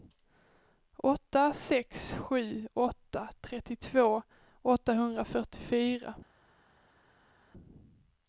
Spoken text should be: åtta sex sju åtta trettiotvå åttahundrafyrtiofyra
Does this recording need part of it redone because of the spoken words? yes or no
no